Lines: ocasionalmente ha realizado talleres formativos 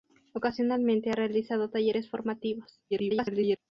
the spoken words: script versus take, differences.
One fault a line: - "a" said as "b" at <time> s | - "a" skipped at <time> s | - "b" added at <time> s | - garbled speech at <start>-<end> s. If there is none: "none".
- garbled speech at 2.9-3.6 s